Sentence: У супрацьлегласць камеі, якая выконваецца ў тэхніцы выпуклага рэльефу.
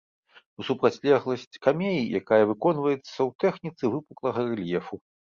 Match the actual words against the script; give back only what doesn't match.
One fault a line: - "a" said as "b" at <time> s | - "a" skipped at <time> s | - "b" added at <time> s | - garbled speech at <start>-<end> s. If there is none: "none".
none